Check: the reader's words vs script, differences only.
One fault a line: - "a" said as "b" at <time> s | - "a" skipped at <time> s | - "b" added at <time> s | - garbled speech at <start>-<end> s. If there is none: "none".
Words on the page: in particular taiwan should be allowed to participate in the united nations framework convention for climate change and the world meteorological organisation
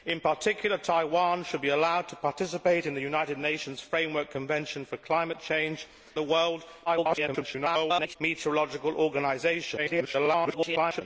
- "and" skipped at 5.8 s
- garbled speech at 6.9-8.2 s
- garbled speech at 9.8-11.0 s